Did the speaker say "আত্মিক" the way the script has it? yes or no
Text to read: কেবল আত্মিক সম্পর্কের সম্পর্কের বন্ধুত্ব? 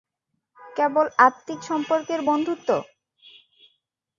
yes